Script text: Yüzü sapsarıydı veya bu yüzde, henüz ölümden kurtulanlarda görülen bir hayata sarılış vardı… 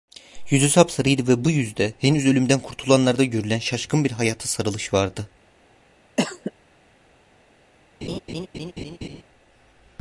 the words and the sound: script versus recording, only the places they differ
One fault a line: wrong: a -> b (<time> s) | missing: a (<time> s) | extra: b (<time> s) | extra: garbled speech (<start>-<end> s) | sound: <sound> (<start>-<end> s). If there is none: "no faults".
wrong: veya -> ve (1.3 s)
extra: şaşkın (3.6 s)
sound: cough (6.2-6.5 s)
sound: laugh (8.0-9.2 s)